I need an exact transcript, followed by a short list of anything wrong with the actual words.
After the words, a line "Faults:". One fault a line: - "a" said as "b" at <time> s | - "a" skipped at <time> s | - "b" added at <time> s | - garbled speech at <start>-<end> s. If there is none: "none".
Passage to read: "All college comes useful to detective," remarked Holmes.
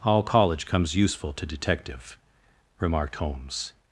"All college comes useful to detective," remarked Holmes.
Faults:
none